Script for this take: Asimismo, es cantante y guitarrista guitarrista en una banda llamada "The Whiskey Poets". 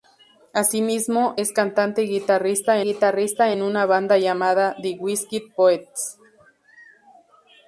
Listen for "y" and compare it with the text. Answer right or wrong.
right